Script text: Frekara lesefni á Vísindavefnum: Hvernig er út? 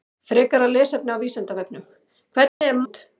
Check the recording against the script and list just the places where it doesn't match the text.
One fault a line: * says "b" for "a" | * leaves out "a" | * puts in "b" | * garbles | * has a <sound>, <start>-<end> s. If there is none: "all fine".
* has a dropout, 2.5-2.6 s